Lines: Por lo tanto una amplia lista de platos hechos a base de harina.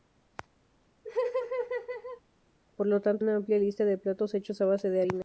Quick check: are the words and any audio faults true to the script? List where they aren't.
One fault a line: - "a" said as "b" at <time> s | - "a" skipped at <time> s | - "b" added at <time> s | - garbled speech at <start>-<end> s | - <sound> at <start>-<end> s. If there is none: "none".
- laugh at 1.0-2.2 s